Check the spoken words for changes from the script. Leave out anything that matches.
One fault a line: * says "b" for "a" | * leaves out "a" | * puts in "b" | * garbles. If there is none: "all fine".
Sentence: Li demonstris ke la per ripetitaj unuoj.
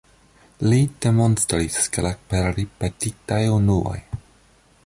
all fine